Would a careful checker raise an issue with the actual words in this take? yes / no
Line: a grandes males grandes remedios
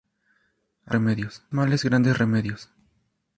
yes